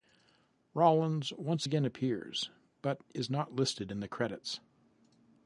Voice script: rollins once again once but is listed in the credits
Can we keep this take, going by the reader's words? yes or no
no